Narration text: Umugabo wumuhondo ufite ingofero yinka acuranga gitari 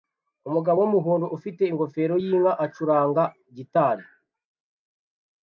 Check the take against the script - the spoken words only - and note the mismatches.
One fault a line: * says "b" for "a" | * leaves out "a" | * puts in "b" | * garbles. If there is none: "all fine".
all fine